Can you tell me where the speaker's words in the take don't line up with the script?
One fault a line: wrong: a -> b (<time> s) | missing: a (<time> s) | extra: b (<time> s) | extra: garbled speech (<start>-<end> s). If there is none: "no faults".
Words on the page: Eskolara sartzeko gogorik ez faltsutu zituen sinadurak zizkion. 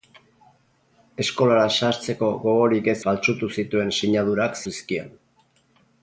no faults